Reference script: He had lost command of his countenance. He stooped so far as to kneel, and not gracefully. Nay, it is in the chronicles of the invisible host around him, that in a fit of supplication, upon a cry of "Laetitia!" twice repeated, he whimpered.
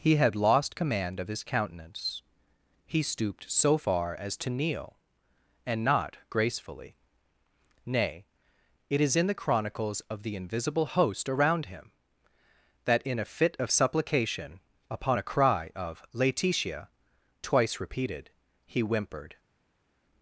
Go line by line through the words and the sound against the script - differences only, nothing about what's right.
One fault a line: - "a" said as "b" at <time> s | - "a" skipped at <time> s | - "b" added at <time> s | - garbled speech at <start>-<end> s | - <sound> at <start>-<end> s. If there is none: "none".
none